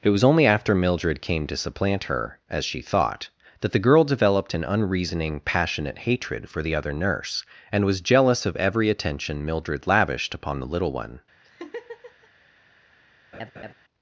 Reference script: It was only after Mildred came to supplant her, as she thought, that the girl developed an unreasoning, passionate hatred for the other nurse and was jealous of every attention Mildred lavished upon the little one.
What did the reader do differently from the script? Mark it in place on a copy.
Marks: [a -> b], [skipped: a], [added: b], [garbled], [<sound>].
It was only after Mildred came to supplant her, as she thought, that the girl developed an unreasoning, passionate hatred for the other nurse and was jealous of every attention Mildred lavished upon the little one. [laugh] [laugh]